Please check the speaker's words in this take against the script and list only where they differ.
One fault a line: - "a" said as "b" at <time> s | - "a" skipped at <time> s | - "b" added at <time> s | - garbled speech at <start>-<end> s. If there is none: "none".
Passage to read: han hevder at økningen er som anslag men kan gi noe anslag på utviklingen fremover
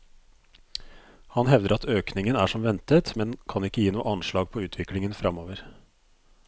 - "anslag" said as "ventet" at 2.6 s
- "ikke" added at 3.7 s